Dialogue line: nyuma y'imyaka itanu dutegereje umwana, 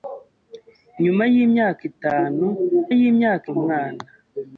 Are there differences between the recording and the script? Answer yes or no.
yes